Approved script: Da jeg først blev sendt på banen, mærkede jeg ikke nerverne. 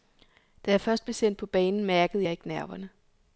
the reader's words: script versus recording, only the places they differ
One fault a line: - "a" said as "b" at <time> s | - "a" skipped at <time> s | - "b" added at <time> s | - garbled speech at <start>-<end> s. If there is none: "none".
none